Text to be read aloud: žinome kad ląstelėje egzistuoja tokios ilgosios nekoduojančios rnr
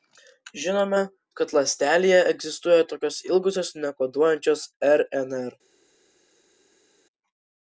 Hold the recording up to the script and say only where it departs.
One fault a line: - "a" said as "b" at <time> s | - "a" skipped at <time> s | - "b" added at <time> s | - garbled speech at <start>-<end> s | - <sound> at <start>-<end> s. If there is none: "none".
none